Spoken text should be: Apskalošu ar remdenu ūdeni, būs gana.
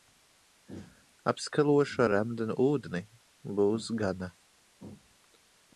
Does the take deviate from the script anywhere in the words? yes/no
no